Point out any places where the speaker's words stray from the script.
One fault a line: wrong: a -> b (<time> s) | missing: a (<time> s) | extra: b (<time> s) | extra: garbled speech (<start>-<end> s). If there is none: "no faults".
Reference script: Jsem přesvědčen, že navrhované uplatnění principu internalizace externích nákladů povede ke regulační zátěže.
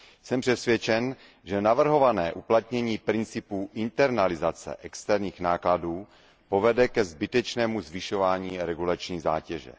extra: zbytečnému zvyšování (7.0 s)